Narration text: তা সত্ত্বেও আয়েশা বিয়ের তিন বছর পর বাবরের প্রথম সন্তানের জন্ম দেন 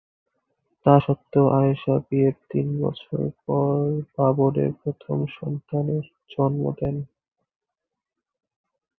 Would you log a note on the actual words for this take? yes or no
no